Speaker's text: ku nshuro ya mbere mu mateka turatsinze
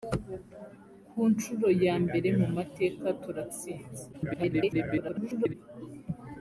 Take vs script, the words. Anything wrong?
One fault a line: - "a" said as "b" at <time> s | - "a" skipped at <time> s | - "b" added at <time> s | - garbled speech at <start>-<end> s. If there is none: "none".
- garbled speech at 4.1-5.5 s